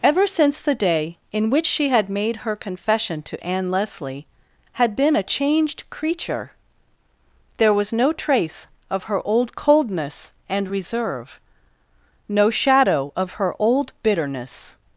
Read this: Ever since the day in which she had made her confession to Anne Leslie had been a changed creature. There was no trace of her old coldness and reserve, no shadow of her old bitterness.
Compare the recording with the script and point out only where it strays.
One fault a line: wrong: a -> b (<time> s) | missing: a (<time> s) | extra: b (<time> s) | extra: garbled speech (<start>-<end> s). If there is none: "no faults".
no faults